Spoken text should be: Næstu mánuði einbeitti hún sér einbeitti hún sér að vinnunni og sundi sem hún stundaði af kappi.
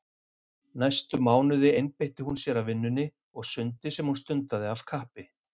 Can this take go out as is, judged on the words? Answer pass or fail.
fail